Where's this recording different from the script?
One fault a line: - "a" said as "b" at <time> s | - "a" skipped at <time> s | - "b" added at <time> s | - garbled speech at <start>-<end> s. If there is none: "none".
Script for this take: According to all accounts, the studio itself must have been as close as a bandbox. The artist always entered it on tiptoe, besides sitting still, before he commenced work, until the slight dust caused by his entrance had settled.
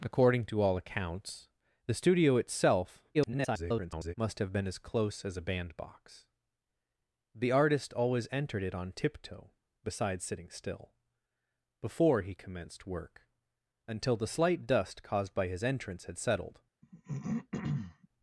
- garbled speech at 3.1-4.1 s